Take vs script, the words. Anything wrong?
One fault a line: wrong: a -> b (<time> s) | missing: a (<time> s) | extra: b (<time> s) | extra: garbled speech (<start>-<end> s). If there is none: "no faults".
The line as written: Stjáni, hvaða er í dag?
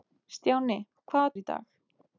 no faults